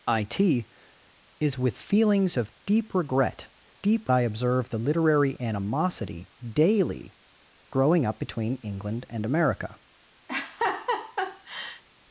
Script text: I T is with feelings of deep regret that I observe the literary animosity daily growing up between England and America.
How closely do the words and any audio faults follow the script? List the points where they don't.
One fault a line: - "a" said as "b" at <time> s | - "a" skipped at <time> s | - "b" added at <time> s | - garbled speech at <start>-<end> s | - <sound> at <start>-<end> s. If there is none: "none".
- "that" said as "deep" at 3.8 s
- laugh at 10.3-11.8 s